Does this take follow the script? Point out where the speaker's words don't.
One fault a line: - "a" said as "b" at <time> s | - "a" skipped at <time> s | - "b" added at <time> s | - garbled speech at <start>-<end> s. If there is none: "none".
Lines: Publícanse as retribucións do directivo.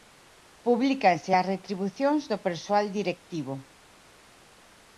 - "persoal" added at 2.5 s